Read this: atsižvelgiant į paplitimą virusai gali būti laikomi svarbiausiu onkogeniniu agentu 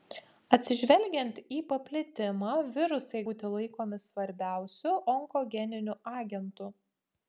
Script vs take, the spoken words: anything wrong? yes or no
yes